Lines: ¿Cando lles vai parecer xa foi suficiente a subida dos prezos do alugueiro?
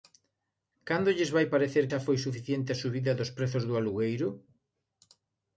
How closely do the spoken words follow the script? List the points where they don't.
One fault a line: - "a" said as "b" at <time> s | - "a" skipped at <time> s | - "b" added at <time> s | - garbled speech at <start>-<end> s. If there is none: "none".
none